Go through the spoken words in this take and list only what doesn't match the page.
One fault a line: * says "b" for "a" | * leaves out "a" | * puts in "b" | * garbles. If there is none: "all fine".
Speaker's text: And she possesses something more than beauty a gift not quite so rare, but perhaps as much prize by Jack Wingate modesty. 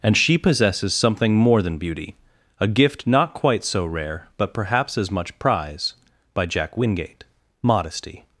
all fine